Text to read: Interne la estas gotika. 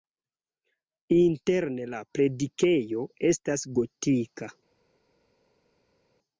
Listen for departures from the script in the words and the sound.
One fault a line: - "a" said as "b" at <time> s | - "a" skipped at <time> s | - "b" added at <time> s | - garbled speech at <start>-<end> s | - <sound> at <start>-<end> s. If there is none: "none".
- "predikejo" added at 2.2 s